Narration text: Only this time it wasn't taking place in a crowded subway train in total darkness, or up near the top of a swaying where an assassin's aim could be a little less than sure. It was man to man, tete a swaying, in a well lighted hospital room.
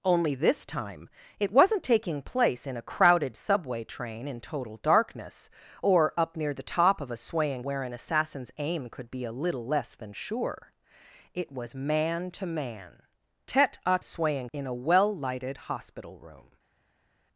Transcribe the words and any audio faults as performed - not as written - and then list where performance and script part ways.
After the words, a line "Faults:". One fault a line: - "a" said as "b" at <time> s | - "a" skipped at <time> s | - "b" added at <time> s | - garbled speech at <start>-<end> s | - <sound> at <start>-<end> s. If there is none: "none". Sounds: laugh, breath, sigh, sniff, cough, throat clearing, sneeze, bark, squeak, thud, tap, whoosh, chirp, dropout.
Only this time it wasn't taking place in a crowded subway train in total darkness, or up near the top of a swaying where an assassin's aim could be a little less than sure. It was man to man, tete a swaying, in a well lighted hospital room.
Faults:
none